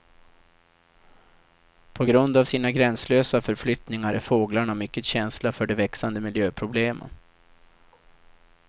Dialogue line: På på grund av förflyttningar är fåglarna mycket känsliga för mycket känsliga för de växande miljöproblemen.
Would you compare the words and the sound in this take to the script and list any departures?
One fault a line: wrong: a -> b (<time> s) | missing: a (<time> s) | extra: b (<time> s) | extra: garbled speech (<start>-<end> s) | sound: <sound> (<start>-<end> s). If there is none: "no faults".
missing: på (2.0 s)
extra: sina gränslösa (2.4 s)
missing: mycket känsliga för (5.7 s)